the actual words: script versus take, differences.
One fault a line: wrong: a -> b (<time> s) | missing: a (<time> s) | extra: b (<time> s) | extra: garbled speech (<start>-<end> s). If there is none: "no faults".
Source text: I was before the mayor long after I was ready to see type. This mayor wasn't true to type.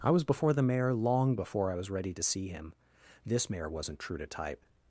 wrong: after -> before (1.4 s)
wrong: type -> him (2.5 s)